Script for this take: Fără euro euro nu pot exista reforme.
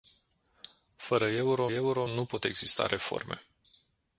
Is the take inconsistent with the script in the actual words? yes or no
no